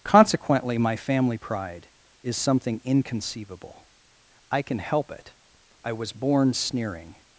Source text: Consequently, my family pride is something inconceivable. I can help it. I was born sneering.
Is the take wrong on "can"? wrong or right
right